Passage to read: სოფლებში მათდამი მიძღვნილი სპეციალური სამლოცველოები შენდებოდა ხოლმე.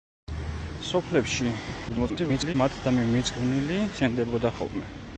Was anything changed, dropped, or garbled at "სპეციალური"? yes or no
yes